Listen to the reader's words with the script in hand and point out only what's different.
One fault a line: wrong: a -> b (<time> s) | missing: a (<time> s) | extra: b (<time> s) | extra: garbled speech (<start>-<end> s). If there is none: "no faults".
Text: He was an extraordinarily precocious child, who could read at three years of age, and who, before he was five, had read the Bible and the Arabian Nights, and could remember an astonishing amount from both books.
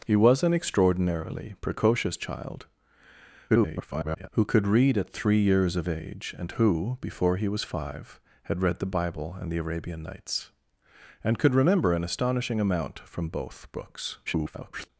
extra: garbled speech (3.5-4.3 s)
extra: garbled speech (14.3-14.9 s)